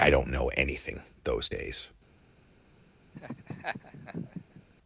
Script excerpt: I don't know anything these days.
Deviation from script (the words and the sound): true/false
true